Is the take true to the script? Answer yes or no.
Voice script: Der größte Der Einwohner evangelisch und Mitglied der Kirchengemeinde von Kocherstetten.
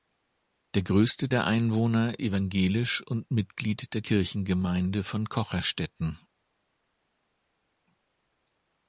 yes